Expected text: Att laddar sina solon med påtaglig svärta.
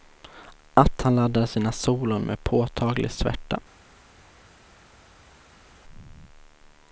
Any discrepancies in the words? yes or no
yes